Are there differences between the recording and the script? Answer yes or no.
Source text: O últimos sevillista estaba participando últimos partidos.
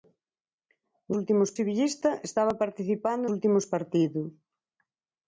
no